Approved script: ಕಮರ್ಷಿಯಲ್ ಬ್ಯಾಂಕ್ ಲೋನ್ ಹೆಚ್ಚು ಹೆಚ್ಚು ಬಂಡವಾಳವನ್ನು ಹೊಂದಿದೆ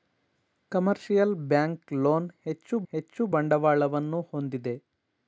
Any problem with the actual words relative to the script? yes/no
no